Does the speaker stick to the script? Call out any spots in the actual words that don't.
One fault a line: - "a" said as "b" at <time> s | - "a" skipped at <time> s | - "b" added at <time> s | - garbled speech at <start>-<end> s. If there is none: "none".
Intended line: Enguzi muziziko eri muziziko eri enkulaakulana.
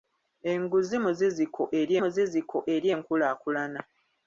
none